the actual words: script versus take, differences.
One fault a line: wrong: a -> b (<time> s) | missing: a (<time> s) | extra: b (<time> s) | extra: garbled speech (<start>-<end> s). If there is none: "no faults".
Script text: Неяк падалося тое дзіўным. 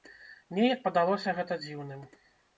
wrong: тое -> гэта (1.4 s)